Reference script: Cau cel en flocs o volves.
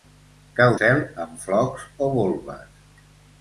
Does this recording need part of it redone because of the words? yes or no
no